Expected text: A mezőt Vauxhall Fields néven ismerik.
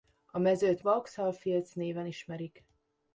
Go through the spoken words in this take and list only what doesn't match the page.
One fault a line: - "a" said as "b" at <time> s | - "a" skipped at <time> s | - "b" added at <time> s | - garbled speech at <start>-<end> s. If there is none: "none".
none